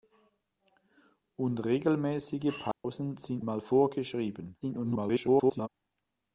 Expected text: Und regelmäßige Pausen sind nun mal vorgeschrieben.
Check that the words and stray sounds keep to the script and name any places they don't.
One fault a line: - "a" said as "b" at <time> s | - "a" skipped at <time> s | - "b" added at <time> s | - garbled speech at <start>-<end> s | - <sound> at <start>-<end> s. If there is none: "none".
- dropout at 2.7-2.8 s
- "nun" skipped at 3.5 s
- garbled speech at 4.6-5.7 s